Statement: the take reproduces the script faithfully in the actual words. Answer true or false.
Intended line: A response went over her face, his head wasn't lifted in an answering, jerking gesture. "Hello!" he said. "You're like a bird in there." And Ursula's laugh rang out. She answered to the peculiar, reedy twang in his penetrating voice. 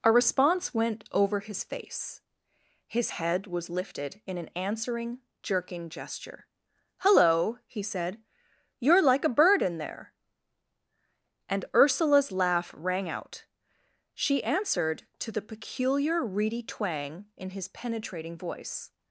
false